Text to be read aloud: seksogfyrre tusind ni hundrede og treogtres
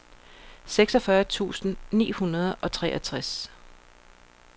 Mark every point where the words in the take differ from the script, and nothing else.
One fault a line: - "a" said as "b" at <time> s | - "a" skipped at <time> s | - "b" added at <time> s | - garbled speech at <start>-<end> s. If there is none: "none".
none